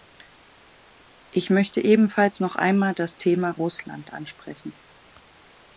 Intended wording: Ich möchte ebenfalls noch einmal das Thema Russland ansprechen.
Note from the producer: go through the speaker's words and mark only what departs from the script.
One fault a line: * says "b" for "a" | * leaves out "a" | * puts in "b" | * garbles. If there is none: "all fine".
all fine